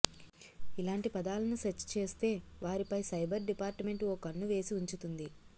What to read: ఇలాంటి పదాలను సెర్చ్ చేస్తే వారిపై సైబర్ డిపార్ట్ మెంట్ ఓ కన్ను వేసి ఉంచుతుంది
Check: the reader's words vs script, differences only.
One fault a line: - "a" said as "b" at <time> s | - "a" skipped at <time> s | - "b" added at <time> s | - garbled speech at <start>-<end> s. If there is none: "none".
none